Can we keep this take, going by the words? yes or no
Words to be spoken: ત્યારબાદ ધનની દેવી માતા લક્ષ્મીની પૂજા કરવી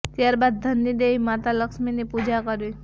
yes